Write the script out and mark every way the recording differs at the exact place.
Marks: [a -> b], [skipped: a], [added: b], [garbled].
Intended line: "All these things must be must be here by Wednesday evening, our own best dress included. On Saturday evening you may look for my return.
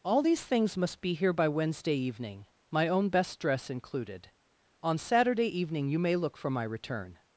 "All these things must be [skipped: must be] here by Wednesday evening, [our -> my] own best dress included. On Saturday evening you may look for my return.